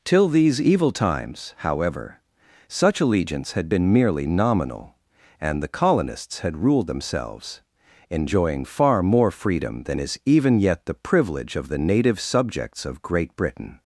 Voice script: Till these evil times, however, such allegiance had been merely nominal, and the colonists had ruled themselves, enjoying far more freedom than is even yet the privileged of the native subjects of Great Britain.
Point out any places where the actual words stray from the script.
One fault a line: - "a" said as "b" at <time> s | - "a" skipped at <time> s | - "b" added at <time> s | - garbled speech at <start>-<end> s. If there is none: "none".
- "privileged" said as "privilege" at 10.9 s